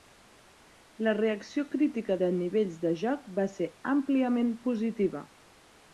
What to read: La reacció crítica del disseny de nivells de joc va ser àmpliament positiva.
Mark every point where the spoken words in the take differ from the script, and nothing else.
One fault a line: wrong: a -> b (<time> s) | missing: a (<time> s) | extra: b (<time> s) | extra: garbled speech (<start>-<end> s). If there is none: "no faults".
missing: del disseny (2.2 s)